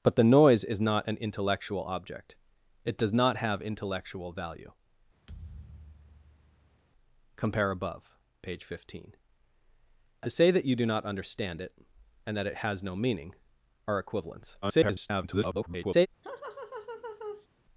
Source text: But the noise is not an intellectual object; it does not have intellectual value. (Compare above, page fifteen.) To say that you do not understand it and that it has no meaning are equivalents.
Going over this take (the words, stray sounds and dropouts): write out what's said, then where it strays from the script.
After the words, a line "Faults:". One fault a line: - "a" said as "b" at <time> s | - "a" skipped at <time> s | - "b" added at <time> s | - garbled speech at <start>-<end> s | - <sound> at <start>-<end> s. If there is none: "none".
But the noise is not an intellectual object; it does not have intellectual value. (Compare above, page fifteen.) To say that you do not understand it and that it has no meaning are equivalents. [garbled]
Faults:
- thud at 5.3-6.8 s
- garbled speech at 14.6-16.1 s
- laugh at 16.2-17.5 s